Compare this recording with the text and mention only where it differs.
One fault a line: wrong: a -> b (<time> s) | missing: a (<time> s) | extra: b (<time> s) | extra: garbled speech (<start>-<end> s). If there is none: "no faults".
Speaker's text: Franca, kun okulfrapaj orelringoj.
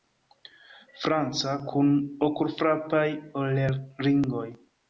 no faults